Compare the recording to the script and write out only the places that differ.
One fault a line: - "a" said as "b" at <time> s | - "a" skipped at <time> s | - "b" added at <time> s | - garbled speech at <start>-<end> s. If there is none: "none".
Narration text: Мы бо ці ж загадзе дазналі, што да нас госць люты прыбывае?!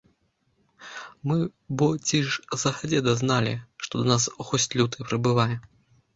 none